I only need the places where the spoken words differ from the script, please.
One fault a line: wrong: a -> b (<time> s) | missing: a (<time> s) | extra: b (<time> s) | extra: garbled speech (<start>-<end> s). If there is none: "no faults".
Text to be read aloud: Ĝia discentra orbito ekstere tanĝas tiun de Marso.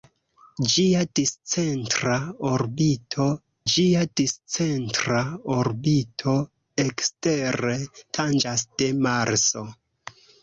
extra: ĝia discentra orbito (3.7 s)
missing: tiun (8.7 s)